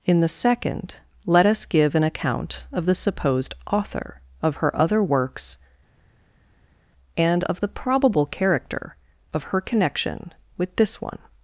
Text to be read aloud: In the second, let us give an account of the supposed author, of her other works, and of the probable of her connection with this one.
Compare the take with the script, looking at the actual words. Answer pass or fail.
fail